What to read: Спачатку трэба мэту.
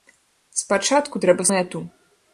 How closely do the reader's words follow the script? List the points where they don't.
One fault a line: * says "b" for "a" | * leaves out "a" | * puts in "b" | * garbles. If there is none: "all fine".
all fine